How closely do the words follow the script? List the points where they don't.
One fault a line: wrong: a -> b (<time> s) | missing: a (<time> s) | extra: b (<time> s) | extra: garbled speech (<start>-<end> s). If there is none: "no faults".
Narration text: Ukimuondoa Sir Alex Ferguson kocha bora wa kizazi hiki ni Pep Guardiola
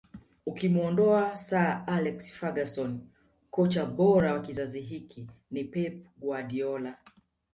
no faults